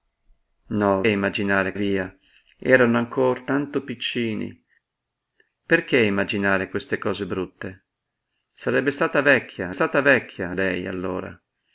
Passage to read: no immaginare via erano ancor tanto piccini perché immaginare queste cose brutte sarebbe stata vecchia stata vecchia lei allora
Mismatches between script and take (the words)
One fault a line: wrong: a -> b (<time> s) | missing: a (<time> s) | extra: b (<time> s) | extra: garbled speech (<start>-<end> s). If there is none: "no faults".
no faults